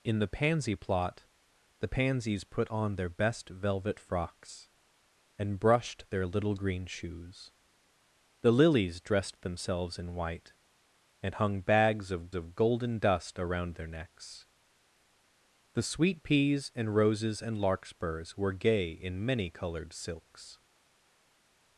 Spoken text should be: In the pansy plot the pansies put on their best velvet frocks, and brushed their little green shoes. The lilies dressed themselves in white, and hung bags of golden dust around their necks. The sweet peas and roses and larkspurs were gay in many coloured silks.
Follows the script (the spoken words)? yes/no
no